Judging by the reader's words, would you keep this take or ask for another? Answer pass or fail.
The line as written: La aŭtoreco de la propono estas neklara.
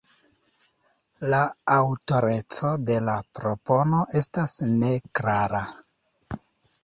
pass